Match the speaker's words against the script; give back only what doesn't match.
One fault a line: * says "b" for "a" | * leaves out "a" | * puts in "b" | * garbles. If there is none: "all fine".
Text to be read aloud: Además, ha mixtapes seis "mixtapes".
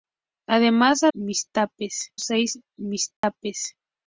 all fine